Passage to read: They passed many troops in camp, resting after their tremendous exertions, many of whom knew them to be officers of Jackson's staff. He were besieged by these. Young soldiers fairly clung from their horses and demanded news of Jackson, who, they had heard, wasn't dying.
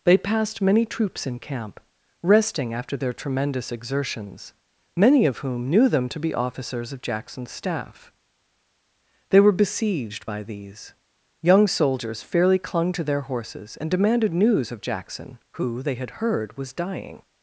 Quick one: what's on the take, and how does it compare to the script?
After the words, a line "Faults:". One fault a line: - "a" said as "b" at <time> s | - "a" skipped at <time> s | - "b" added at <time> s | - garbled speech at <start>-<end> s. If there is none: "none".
They passed many troops in camp, resting after their tremendous exertions, many of whom knew them to be officers of Jackson's staff. They were besieged by these. Young soldiers fairly clung to their horses and demanded news of Jackson, who, they had heard, was dying.
Faults:
- "He" said as "They" at 9.3 s
- "from" said as "to" at 12.9 s
- "wasn't" said as "was" at 16.6 s